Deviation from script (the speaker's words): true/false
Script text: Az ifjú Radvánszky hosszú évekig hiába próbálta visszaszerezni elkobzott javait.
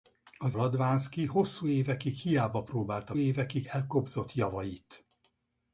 true